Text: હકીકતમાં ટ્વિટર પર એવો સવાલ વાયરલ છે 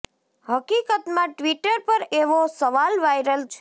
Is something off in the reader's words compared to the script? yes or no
no